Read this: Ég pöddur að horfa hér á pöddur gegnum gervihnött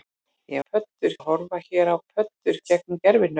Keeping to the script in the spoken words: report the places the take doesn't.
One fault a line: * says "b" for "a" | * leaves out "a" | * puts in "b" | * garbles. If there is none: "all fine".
all fine